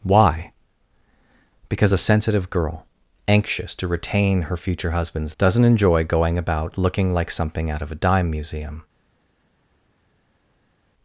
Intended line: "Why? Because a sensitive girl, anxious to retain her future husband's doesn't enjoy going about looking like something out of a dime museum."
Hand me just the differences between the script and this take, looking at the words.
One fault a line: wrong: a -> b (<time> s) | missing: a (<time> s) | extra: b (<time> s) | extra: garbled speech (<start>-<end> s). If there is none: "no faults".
no faults